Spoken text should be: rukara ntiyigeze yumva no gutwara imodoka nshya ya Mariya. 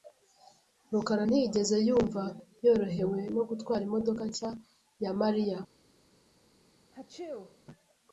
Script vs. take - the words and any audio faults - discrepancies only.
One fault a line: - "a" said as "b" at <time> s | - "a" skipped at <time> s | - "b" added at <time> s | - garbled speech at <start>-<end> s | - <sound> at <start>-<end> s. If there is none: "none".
- "yorohewe" added at 2.6 s
- sneeze at 6.9-7.6 s